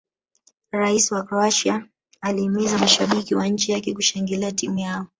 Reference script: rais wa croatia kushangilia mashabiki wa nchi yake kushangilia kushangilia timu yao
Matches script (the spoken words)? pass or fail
fail